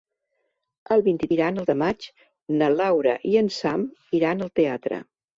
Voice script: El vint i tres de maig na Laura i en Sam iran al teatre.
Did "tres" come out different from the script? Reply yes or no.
yes